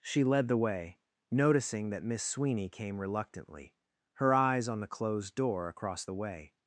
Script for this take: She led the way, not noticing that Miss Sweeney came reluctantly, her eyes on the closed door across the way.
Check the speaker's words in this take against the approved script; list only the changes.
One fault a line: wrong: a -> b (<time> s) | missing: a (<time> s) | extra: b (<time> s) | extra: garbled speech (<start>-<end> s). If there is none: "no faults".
missing: not (1.0 s)